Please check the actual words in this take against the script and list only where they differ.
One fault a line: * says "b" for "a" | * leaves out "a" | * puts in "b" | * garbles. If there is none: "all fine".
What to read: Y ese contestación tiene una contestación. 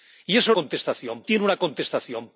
all fine